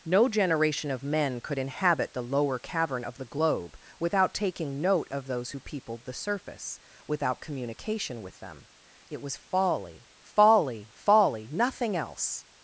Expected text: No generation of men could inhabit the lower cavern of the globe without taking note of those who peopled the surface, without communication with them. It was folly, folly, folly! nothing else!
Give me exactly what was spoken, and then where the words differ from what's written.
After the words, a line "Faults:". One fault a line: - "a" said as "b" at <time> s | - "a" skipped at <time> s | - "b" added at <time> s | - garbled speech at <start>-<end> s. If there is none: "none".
No generation of men could inhabit the lower cavern of the globe without taking note of those who peopled the surface, without communication with them. It was folly, folly, folly! nothing else!
Faults:
none